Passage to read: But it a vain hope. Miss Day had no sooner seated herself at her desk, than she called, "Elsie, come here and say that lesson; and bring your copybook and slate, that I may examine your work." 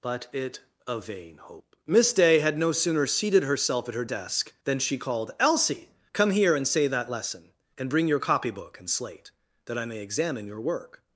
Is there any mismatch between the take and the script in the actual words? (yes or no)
no